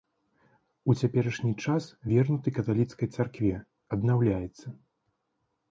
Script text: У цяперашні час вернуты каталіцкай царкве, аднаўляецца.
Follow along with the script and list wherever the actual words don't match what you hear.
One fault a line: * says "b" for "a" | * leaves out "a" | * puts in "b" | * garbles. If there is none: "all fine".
all fine